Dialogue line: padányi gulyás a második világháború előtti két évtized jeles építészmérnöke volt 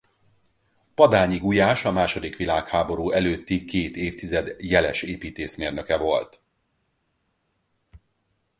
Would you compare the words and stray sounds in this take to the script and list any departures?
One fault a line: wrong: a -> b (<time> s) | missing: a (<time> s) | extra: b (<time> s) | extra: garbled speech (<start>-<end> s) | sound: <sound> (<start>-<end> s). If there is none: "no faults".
no faults